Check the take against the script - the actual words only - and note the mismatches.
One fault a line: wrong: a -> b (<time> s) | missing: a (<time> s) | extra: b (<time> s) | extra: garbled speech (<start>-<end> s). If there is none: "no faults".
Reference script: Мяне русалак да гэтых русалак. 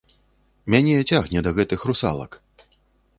wrong: русалак -> цягне (1.1 s)